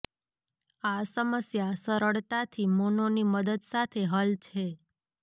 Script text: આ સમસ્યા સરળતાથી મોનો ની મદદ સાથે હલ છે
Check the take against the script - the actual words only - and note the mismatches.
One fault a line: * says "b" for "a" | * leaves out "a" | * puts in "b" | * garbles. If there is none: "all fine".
all fine